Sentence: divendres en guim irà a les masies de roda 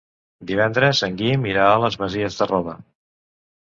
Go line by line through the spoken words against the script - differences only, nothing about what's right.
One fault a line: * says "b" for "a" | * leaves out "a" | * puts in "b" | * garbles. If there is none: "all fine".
all fine